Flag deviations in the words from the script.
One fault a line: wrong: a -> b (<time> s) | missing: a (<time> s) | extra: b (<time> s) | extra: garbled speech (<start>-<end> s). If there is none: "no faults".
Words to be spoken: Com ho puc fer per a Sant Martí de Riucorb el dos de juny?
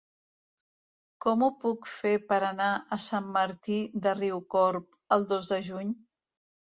extra: anar (2.5 s)